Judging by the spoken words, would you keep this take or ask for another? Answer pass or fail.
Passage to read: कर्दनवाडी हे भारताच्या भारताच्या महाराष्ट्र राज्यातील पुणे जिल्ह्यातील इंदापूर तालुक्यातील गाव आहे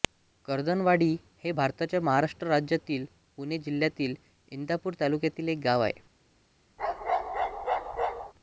fail